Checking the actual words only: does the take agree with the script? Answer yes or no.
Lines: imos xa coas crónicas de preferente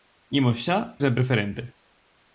no